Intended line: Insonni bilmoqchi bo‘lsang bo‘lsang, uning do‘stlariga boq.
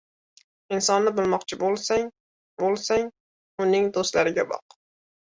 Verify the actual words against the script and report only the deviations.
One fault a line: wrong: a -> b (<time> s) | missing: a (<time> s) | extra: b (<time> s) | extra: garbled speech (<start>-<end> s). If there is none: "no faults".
no faults